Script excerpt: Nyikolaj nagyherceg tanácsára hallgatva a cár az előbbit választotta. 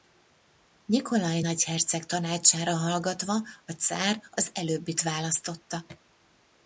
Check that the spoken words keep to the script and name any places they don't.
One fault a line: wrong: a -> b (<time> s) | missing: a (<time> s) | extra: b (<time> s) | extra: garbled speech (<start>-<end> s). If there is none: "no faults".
no faults